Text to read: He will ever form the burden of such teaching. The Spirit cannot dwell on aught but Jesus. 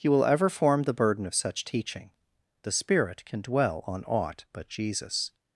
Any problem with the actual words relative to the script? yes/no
yes